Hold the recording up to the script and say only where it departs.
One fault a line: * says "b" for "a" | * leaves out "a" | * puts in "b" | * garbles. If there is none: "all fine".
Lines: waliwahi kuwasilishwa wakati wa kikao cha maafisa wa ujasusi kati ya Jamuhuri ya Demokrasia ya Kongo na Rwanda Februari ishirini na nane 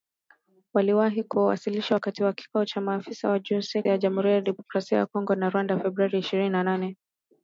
* leaves out "kati"